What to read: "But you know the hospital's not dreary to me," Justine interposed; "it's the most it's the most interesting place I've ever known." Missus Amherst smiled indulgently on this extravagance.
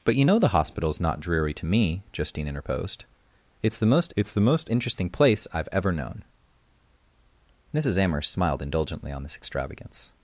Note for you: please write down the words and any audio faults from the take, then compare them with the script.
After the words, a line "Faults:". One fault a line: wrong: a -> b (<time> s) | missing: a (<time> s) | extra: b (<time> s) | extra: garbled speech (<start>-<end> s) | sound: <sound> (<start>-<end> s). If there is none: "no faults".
"But you know the hospital's not dreary to me," Justine interposed; "it's the most it's the most interesting place I've ever known." Missus Amherst smiled indulgently on this extravagance.
Faults:
no faults